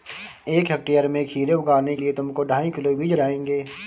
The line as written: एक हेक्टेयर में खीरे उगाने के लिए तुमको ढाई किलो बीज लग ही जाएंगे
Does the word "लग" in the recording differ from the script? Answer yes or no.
yes